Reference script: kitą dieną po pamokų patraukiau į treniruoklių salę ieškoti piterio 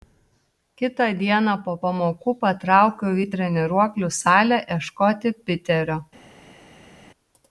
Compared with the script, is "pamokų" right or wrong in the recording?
right